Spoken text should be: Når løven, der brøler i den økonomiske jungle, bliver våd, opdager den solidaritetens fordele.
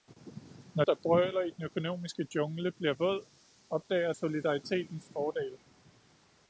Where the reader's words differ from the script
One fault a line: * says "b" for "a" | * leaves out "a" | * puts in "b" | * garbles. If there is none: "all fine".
* leaves out "løven"
* leaves out "den"